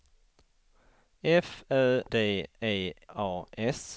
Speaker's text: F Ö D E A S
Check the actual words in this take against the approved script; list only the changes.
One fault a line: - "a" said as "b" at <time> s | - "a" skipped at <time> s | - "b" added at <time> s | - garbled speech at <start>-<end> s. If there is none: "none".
none